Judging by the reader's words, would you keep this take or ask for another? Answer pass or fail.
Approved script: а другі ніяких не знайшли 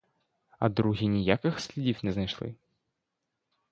fail